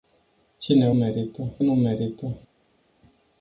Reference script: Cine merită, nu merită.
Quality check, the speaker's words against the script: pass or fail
pass